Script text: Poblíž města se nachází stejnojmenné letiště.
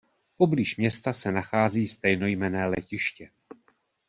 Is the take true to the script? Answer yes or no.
yes